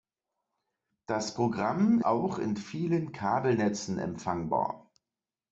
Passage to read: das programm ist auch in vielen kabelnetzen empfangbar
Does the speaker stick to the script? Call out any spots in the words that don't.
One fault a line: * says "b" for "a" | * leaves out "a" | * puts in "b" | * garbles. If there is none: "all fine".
* leaves out "ist"